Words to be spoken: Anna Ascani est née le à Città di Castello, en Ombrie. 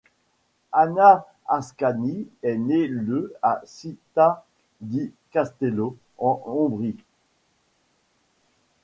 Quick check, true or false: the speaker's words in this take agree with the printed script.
true